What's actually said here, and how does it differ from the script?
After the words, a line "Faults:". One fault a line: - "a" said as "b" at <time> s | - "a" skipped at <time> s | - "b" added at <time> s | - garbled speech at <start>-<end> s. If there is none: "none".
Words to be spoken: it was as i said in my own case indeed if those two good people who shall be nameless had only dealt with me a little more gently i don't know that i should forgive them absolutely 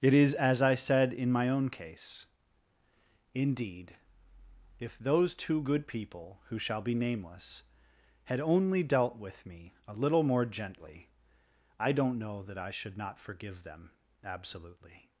it is as i said in my own case indeed if those two good people who shall be nameless had only dealt with me a little more gently i don't know that i should not forgive them absolutely
Faults:
- "was" said as "is" at 0.1 s
- "not" added at 13.0 s